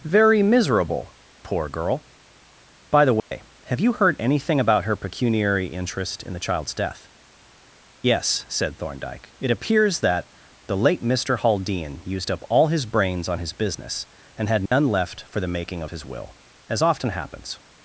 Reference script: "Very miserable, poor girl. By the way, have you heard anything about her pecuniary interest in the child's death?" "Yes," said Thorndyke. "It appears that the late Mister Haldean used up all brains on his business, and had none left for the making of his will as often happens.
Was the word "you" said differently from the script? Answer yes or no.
no